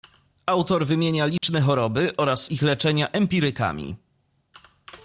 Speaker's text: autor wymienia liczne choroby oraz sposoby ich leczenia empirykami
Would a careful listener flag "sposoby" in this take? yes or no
yes